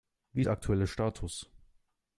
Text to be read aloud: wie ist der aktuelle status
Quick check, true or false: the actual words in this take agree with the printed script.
false